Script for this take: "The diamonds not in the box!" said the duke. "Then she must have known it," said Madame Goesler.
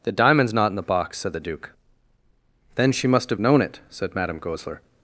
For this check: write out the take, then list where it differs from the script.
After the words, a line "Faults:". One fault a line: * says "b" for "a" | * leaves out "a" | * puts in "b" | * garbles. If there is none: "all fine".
"The diamonds not in the box!" said the duke. "Then she must have known it," said Madame Goesler.
Faults:
all fine